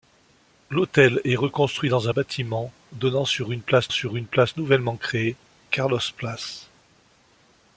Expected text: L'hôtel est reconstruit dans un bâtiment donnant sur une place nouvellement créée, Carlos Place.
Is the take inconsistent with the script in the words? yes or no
yes